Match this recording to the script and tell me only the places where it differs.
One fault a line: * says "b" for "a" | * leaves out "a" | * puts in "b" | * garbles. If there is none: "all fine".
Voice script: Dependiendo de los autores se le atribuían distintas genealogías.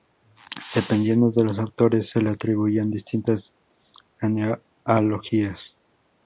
all fine